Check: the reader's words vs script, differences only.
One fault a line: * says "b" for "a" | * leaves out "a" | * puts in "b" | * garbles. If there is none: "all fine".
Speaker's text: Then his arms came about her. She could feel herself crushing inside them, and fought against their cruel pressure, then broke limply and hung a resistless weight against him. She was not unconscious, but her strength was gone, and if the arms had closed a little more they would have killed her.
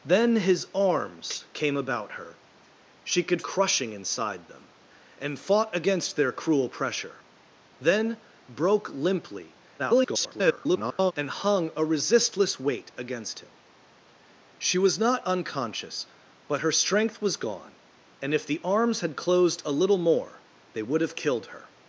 * leaves out "feel herself"
* garbles